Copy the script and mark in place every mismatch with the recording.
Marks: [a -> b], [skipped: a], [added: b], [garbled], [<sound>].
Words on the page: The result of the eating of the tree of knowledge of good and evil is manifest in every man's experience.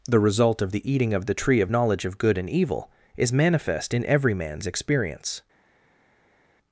The result of the eating of the tree of knowledge of good and evil is manifest in every man's experience.